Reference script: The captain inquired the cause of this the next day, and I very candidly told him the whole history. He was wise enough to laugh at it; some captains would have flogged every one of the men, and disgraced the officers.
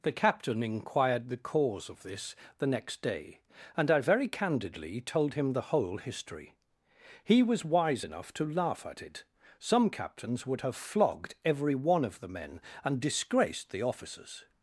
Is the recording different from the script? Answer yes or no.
no